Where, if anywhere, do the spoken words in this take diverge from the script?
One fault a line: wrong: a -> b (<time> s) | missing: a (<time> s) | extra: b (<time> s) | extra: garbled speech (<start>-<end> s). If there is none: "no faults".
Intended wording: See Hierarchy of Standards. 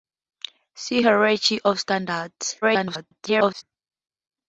extra: garbled speech (2.6-3.6 s)